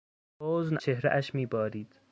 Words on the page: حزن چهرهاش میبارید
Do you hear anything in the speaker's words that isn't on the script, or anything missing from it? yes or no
no